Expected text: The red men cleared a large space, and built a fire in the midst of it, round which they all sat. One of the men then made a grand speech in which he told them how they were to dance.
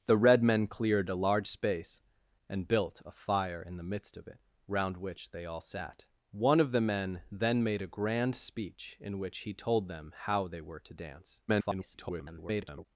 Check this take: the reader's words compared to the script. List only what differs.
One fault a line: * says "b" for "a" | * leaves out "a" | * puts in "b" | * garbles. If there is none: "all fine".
* garbles